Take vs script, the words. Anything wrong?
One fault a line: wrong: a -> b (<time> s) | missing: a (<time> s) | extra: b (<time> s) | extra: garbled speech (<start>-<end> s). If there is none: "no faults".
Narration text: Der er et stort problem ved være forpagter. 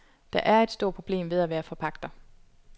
extra: at (1.4 s)